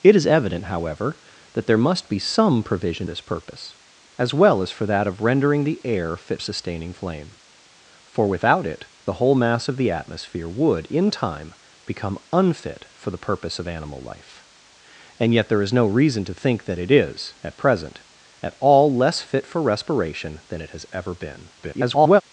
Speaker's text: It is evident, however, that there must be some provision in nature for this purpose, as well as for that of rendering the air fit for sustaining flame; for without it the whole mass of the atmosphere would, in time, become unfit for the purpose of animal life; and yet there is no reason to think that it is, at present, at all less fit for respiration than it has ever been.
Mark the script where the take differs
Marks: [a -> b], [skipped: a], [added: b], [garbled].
It is evident, however, that there must be some provision [skipped: in nature for] this purpose, as well as for that of rendering the air fit [skipped: for] sustaining flame; for without it the whole mass of the atmosphere would, in time, become unfit for the purpose of animal life; and yet there is no reason to think that it is, at present, at all less fit for respiration than it has ever been. [garbled]